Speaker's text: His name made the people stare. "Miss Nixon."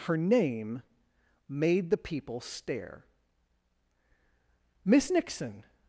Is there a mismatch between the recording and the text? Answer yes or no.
yes